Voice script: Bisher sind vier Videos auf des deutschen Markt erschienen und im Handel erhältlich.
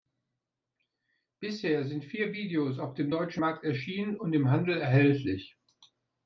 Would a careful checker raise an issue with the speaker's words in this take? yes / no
yes